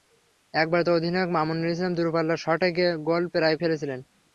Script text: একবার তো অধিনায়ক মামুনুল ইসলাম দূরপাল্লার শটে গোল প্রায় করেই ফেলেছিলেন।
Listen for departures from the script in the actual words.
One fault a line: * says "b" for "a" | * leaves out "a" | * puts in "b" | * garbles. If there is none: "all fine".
* leaves out "করেই"